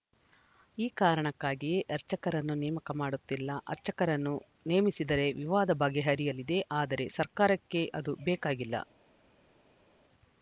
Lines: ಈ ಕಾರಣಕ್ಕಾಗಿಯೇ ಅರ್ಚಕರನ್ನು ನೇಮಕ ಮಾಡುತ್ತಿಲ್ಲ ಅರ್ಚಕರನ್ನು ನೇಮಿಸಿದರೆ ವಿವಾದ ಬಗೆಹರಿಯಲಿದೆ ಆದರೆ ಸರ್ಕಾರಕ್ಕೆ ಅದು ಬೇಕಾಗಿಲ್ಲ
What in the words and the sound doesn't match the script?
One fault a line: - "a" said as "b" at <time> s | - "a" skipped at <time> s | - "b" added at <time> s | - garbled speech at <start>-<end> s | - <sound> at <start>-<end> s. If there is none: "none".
none